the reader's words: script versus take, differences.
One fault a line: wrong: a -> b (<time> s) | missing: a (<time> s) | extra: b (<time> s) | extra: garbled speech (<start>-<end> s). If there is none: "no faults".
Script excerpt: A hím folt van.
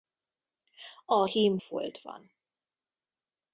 no faults